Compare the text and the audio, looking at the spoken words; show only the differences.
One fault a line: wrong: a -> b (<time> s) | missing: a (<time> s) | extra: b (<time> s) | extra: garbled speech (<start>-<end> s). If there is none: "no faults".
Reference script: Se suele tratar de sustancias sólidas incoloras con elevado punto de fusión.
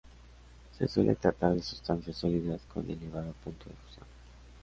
missing: incoloras (2.6 s)